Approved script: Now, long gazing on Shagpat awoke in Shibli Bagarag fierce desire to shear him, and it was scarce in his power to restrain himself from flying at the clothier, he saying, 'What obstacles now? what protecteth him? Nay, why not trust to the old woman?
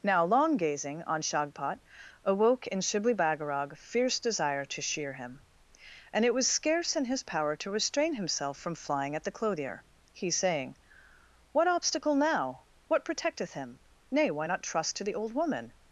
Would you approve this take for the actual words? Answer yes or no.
no